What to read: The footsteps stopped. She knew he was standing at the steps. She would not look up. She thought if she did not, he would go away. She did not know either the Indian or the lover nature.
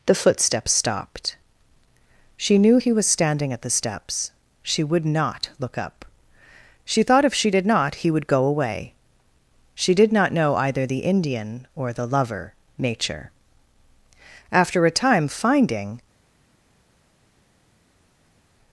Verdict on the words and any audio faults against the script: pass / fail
fail